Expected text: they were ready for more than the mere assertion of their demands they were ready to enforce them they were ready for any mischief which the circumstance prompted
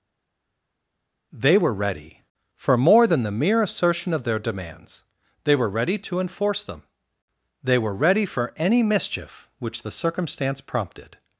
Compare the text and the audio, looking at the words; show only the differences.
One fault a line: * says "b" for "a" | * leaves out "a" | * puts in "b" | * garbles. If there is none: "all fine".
all fine